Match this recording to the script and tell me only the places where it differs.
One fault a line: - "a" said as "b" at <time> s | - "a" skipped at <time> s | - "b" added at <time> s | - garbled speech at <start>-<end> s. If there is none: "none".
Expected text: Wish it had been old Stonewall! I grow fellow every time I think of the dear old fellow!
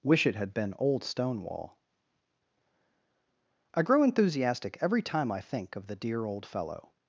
- "fellow" said as "enthusiastic" at 4.0 s